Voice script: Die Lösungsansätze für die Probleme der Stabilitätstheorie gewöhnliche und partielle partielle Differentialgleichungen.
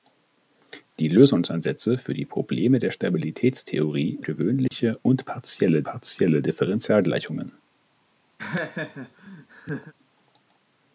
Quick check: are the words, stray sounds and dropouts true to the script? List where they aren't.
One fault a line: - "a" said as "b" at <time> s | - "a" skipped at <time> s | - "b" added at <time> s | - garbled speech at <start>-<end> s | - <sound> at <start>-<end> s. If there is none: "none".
- dropout at 4.7-4.7 s
- laugh at 8.4-9.9 s